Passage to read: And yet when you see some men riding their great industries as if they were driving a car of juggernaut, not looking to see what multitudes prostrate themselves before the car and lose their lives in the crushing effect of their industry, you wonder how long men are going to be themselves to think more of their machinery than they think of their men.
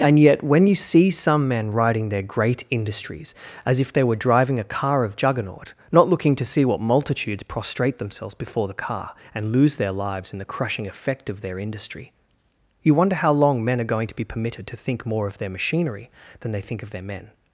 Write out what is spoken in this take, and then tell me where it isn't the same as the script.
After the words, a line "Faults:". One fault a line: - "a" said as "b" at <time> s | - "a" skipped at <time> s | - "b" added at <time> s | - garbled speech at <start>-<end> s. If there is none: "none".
And yet when you see some men riding their great industries as if they were driving a car of juggernaut, not looking to see what multitudes prostrate themselves before the car and lose their lives in the crushing effect of their industry, you wonder how long men are going to be permitted to think more of their machinery than they think of their men.
Faults:
- "themselves" said as "permitted" at 14.2 s